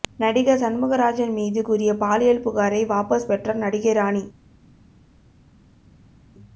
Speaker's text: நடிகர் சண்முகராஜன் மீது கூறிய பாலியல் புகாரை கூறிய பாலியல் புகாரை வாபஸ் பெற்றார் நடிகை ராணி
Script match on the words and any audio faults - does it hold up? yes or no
no